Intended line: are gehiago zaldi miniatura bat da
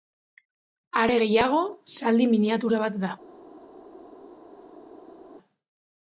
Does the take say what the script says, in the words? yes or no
yes